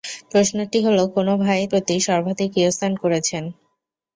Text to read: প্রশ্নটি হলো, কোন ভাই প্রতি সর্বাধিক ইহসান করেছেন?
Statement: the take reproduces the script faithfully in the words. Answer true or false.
true